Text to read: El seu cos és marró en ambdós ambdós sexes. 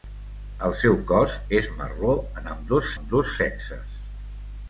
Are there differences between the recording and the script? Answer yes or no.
no